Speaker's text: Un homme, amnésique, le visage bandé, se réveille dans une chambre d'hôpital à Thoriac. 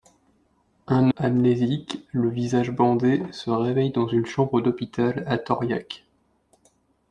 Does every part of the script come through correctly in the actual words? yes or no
no